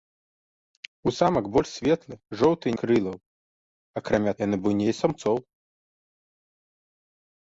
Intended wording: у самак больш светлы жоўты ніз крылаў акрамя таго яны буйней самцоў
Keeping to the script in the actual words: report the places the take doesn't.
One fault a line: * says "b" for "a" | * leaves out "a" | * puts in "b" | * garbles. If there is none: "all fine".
* leaves out "ніз"
* leaves out "таго"